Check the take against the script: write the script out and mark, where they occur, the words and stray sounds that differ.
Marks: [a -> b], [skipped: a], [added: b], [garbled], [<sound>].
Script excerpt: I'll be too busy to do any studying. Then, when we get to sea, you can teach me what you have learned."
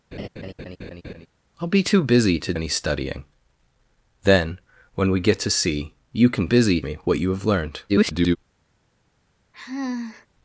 [laugh] I'll be too busy to [skipped: do] any studying. Then, when we get to sea, you can [teach -> busy] me what you have learned." [garbled] [sigh]